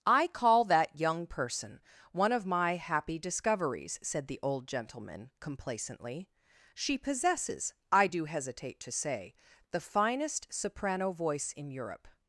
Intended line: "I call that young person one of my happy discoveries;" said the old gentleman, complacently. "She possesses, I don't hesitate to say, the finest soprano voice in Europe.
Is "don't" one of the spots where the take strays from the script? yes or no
yes